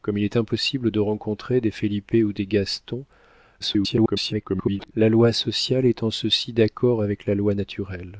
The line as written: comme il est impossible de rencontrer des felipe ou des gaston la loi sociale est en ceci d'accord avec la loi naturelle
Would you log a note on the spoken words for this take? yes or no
yes